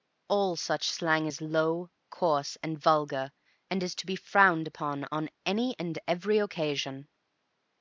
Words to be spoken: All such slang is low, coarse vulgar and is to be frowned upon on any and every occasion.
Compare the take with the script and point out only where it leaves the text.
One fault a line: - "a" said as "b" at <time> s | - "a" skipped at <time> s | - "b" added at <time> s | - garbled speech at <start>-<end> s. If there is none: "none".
- "and" added at 2.6 s